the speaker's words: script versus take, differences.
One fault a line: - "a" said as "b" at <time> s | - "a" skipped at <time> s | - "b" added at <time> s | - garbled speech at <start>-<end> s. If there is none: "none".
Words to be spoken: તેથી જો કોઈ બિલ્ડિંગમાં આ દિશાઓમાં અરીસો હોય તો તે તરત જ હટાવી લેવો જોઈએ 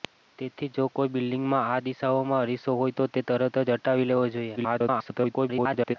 - garbled speech at 4.6-6.0 s